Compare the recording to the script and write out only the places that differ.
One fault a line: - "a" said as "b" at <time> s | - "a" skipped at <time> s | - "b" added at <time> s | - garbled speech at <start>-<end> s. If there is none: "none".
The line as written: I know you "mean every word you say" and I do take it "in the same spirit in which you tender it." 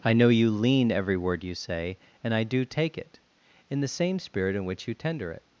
- "mean" said as "lean" at 0.5 s